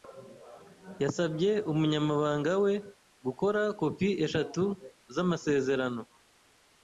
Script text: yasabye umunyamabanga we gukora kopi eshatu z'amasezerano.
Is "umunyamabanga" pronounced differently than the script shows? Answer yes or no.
no